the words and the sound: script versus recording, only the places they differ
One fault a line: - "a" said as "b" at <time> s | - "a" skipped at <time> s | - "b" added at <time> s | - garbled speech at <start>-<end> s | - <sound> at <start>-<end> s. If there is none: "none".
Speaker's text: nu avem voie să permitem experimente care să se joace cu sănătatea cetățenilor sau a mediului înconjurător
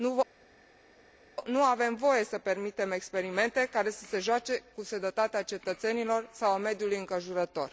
none